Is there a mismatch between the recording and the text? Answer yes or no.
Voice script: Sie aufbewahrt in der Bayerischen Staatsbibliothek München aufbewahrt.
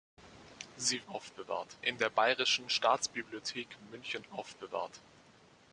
no